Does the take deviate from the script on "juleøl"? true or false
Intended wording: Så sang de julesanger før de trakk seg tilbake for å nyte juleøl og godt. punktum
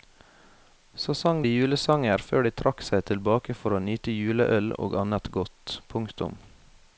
false